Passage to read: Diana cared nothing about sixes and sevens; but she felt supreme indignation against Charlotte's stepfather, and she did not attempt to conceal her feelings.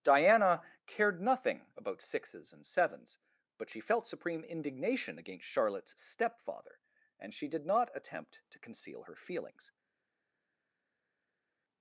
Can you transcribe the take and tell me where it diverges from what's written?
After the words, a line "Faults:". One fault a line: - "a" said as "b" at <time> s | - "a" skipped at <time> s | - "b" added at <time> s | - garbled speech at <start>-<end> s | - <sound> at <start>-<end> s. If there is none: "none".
Diana cared nothing about sixes and sevens; but she felt supreme indignation against Charlotte's stepfather, and she did not attempt to conceal her feelings.
Faults:
none